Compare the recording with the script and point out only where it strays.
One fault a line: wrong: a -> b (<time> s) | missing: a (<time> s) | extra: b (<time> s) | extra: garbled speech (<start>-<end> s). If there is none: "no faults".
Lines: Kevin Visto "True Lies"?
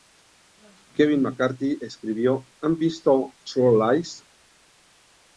extra: McCarthy escribió han (1.2 s)